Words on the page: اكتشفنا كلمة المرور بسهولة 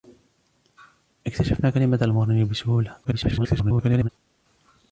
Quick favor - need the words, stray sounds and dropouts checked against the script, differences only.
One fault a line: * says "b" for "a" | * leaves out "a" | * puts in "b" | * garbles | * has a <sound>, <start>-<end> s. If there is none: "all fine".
* garbles